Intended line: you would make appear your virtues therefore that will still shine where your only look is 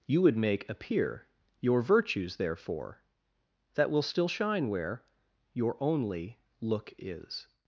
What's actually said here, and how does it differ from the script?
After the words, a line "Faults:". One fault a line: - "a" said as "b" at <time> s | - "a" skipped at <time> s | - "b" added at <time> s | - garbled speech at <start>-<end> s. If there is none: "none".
you would make appear your virtues therefore that will still shine where your only look is
Faults:
none